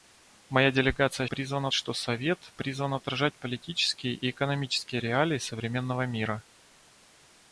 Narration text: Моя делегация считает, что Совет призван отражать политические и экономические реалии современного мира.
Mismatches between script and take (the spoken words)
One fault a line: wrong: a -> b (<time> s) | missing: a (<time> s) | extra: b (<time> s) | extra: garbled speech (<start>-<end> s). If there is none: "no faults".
wrong: считает -> призван (1.3 s)